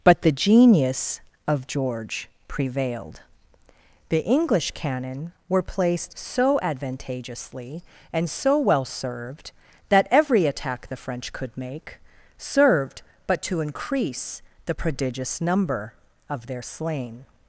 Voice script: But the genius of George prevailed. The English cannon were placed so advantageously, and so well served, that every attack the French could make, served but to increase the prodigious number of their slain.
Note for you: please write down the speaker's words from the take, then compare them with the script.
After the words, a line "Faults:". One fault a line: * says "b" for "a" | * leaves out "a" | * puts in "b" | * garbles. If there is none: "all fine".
But the genius of George prevailed. The English cannon were placed so advantageously, and so well served, that every attack the French could make, served but to increase the prodigious number of their slain.
Faults:
all fine